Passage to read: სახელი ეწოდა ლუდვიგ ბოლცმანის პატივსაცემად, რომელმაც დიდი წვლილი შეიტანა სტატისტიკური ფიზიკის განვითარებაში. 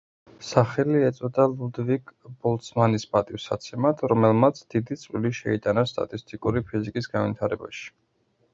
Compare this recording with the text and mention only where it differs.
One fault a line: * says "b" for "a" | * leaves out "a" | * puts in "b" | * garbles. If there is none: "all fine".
all fine